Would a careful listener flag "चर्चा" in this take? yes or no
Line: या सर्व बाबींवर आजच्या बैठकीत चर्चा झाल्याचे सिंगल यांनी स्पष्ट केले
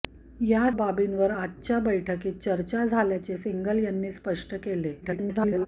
no